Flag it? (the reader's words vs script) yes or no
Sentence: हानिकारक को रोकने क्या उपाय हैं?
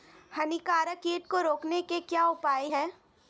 yes